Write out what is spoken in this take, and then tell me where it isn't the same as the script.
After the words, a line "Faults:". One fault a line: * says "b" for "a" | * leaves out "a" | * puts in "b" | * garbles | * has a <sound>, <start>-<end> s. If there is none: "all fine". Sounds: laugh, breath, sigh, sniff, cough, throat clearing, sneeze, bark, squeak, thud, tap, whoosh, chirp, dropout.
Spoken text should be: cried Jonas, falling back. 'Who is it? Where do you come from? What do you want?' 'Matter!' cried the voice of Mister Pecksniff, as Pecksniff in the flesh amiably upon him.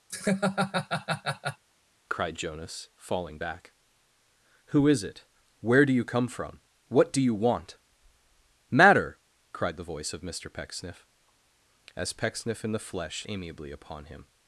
cried Jonas, falling back. 'Who is it? Where do you come from? What do you want?' 'Matter!' cried the voice of Mister Pecksniff, as Pecksniff in the flesh amiably upon him.
Faults:
* has a laugh, 0.1-1.6 s